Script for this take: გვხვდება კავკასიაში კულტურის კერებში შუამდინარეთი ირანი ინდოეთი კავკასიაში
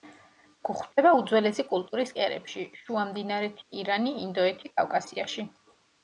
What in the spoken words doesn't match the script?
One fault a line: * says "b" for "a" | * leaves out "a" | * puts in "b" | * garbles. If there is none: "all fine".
* says "უძველესი" for "კავკასიაში"